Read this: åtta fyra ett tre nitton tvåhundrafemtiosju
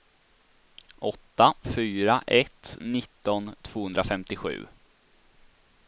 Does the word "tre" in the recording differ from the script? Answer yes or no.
yes